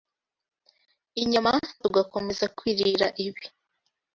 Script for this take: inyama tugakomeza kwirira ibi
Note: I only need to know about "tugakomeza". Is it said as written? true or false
true